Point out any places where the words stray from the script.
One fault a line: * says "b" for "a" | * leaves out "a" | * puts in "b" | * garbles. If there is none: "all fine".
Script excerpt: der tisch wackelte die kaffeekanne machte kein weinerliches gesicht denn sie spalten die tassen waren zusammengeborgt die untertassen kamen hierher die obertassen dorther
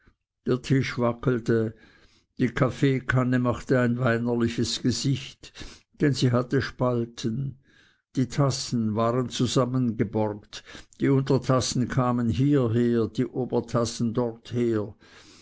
* says "ein" for "kein"
* puts in "hatte"